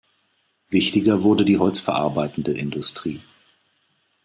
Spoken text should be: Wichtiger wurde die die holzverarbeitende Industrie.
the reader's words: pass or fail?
fail